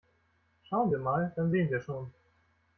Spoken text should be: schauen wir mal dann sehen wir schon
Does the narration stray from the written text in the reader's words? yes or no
no